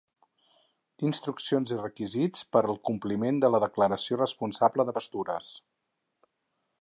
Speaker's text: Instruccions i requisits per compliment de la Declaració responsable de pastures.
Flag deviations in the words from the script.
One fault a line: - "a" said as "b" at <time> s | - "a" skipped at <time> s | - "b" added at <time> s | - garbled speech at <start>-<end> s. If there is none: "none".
- "al" added at 2.7 s